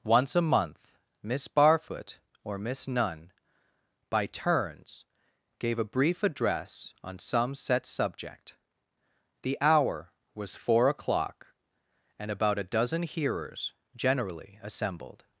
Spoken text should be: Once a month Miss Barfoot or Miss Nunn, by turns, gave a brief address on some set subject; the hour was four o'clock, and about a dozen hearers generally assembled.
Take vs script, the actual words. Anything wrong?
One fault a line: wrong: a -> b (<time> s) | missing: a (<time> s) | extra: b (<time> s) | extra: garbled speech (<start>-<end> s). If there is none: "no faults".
no faults